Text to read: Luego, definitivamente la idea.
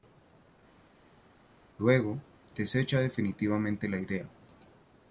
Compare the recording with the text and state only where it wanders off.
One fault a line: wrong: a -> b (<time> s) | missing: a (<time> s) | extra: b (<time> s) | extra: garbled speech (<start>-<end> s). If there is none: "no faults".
extra: desecha (2.6 s)